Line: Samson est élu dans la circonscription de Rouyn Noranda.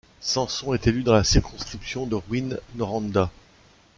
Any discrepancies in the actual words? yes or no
no